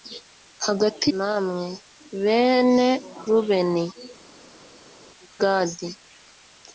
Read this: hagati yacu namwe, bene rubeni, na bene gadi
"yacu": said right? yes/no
no